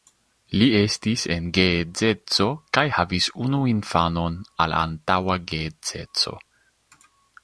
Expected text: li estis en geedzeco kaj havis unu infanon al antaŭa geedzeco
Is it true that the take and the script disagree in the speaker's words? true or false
false